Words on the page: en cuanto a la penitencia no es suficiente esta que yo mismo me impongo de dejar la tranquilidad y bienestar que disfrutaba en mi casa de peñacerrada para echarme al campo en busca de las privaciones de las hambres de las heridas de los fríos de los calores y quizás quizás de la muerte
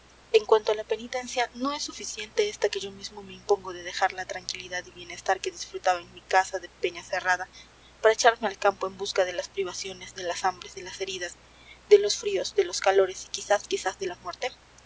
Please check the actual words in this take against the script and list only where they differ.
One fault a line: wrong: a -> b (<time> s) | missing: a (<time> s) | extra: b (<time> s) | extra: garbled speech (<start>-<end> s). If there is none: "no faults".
no faults